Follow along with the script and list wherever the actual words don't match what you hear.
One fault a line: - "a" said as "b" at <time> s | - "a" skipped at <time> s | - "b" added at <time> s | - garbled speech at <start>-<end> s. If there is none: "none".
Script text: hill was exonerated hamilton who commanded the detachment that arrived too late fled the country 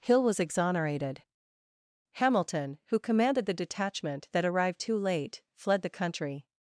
none